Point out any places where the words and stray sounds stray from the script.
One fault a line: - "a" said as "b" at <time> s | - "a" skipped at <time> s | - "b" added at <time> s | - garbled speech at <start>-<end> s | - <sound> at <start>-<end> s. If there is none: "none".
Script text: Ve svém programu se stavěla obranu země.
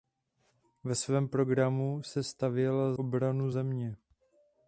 none